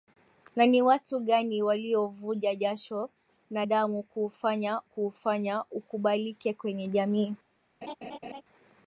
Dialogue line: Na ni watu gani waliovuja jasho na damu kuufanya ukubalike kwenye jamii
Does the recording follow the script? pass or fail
fail